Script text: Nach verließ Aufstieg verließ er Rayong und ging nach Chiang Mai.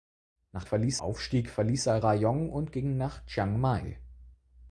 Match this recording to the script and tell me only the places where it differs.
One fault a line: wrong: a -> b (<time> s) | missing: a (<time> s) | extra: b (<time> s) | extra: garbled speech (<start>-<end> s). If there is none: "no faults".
no faults